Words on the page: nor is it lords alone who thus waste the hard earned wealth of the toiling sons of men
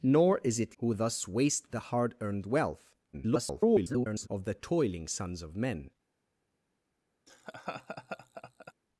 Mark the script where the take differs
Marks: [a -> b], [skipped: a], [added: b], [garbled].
nor is it [skipped: lords alone] who thus waste the hard earned wealth [garbled] of the toiling sons of men